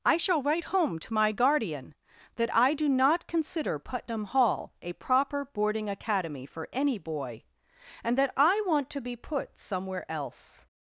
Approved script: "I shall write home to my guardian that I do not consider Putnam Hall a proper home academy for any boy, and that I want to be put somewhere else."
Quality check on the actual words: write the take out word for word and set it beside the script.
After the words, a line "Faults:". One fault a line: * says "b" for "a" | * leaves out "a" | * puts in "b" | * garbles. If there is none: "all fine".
"I shall write home to my guardian that I do not consider Putnam Hall a proper boarding academy for any boy, and that I want to be put somewhere else."
Faults:
* says "boarding" for "home"